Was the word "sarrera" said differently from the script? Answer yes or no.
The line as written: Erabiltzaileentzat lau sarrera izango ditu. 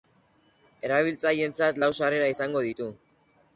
no